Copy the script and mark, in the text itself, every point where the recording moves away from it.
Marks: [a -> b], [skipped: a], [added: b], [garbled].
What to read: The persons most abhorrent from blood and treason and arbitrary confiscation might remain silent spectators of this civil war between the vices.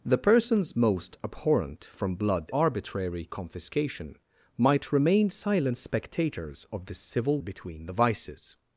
The persons most abhorrent from blood [skipped: and treason and] arbitrary confiscation might remain silent spectators of this civil [skipped: war] between the vices.